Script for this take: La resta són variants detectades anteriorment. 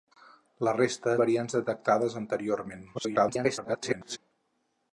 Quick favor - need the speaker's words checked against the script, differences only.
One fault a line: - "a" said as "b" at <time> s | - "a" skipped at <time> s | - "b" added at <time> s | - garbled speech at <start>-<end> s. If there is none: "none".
- "són" skipped at 1.1 s
- garbled speech at 2.9-4.2 s